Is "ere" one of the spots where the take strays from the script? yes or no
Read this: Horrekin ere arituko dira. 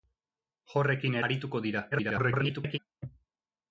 yes